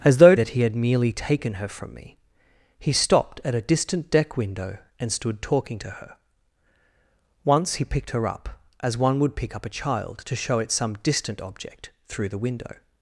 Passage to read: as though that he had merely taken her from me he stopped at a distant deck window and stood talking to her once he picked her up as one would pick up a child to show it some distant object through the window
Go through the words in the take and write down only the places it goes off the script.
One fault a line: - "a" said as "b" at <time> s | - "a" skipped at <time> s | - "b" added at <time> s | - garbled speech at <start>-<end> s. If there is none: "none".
none